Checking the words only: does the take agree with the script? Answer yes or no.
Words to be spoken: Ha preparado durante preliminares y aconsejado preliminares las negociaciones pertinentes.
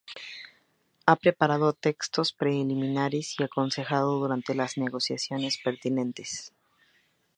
no